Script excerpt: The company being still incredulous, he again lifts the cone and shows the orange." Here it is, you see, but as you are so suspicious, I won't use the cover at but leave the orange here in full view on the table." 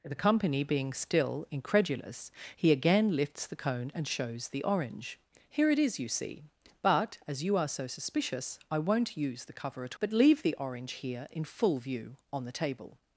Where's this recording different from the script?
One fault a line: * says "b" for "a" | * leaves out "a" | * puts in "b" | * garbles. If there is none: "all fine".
all fine